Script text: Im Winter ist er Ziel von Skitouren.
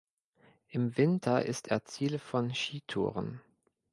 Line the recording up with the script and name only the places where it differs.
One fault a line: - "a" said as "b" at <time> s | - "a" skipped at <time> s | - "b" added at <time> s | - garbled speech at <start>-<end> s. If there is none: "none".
none